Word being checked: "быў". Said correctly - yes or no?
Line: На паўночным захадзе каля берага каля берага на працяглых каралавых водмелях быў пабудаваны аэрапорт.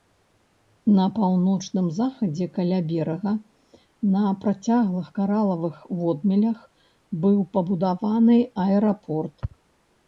yes